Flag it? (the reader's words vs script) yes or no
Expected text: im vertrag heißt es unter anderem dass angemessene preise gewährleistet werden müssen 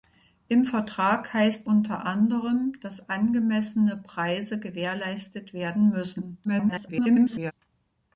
yes